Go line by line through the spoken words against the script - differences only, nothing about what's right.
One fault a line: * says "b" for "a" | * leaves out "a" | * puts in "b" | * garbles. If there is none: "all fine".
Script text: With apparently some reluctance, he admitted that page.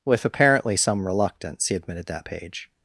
all fine